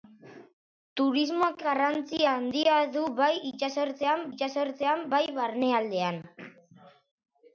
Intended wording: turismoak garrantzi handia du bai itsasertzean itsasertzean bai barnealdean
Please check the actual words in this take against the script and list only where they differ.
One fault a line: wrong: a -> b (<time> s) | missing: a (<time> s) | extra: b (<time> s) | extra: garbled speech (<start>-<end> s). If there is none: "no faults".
no faults